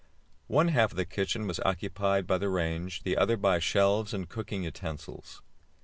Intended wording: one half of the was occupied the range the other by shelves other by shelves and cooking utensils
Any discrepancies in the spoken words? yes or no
yes